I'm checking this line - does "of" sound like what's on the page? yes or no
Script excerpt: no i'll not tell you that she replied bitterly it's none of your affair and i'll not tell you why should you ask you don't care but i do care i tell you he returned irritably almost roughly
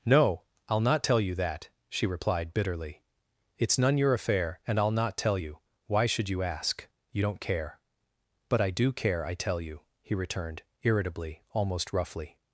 no